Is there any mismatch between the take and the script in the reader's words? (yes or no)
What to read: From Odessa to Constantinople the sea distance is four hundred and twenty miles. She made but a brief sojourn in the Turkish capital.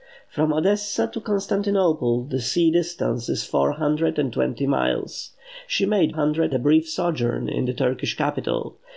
yes